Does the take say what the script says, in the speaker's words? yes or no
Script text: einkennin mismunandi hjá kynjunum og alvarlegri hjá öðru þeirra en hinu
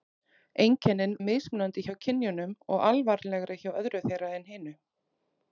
yes